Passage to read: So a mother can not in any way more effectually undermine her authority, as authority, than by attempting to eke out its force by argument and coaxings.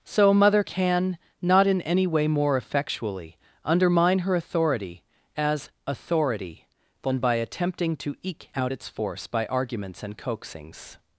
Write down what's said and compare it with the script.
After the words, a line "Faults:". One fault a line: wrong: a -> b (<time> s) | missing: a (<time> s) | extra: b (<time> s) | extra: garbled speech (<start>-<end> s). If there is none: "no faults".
So a mother can not in any way more effectually undermine her authority, as authority, than by attempting to eke out its force by arguments and coaxings.
Faults:
wrong: argument -> arguments (9.5 s)